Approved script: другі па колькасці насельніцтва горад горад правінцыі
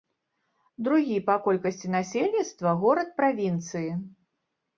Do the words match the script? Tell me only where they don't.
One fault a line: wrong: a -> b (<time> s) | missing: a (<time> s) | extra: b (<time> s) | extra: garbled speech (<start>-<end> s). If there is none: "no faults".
missing: горад (3.1 s)